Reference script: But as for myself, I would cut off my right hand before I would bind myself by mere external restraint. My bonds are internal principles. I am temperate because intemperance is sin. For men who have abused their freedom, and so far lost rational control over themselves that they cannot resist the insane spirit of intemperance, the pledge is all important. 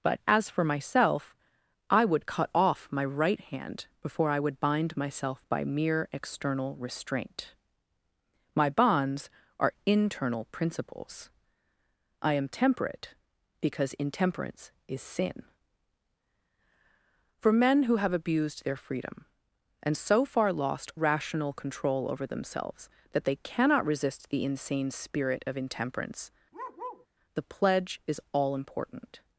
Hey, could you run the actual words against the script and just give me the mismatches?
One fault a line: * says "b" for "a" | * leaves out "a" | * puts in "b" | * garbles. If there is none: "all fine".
all fine